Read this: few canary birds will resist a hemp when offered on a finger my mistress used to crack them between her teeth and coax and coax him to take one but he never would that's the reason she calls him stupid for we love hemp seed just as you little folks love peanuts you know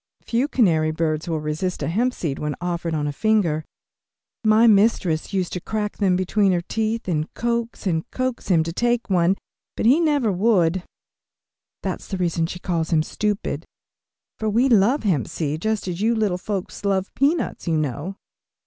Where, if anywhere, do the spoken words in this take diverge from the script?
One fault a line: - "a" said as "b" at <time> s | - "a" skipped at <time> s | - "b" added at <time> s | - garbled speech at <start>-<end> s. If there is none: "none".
- "seed" added at 2.1 s